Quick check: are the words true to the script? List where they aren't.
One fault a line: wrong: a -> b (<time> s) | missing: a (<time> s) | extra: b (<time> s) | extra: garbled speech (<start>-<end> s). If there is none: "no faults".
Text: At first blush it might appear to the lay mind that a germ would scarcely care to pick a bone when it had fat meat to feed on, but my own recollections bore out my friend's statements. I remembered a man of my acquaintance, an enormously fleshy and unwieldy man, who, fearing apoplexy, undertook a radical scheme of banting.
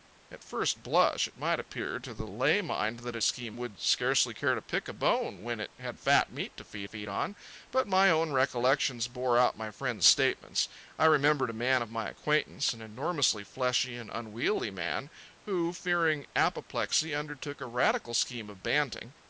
wrong: germ -> scheme (3.2 s)
extra: feed (6.8 s)